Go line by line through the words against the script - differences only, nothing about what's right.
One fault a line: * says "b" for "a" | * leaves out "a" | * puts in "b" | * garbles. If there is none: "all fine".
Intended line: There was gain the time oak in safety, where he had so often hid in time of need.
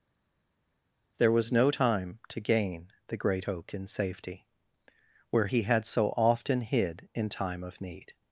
* puts in "no time to"
* says "great" for "time"